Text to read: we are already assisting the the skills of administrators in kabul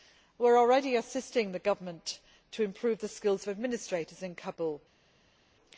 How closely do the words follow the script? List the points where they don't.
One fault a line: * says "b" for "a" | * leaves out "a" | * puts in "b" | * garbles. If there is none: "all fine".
* puts in "government to improve"